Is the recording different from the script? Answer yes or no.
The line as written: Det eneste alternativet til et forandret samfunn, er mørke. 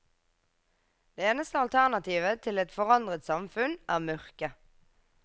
no